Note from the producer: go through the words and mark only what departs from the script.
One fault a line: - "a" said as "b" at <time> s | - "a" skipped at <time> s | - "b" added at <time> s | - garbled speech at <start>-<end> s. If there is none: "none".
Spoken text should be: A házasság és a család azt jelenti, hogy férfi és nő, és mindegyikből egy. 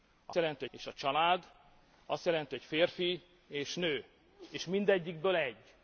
- "házasság" said as "jelenti" at 0.3 s